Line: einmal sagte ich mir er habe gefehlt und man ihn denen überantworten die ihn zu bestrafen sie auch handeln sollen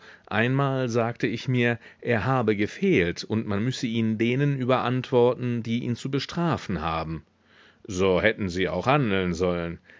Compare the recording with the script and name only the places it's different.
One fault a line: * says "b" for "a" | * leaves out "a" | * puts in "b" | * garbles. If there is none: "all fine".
* puts in "müsse"
* puts in "haben so hätten"